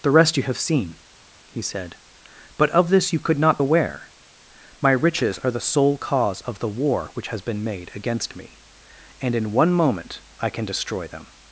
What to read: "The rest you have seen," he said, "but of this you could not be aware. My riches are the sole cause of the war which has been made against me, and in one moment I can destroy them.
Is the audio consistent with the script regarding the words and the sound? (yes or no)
no